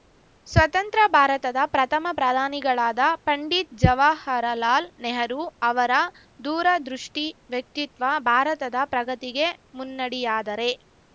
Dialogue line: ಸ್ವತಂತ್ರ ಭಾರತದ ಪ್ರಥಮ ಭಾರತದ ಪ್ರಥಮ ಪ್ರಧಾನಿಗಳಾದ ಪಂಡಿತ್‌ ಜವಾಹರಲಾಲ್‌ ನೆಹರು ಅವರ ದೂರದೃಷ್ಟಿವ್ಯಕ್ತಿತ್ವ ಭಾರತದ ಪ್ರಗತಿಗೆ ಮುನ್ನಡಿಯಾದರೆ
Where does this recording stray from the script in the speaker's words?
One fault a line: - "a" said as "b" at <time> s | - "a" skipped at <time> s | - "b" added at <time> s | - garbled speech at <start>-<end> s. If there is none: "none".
- "ಭಾರತದ ಪ್ರಥಮ" skipped at 2.1 s